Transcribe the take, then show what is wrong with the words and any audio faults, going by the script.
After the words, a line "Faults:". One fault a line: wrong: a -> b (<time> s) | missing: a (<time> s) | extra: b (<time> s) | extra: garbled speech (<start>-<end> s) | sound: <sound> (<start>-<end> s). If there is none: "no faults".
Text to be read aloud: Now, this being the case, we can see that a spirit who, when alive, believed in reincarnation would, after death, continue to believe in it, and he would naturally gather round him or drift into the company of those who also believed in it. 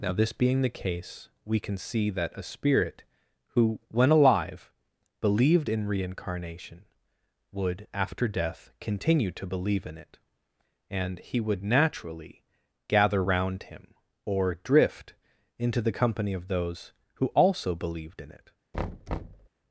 Now, this being the case, we can see that a spirit who, when alive, believed in reincarnation would, after death, continue to believe in it, and he would naturally gather round him or drift into the company of those who also believed in it.
Faults:
sound: thud (18.7-19.5 s)